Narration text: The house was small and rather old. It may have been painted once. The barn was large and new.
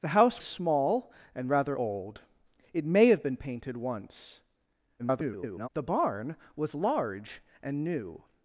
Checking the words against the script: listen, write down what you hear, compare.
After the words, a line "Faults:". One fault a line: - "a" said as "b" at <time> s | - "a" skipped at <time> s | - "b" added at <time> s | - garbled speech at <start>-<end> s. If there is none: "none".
The house small and rather old. It may have been painted once. [garbled] The barn was large and new.
Faults:
- "was" skipped at 0.4 s
- garbled speech at 5.0-5.7 s